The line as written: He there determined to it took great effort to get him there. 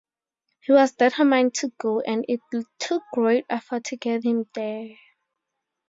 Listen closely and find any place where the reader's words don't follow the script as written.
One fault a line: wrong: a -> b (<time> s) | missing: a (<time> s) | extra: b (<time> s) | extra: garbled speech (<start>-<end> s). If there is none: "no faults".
wrong: there -> was (0.7 s)
extra: go and (1.8 s)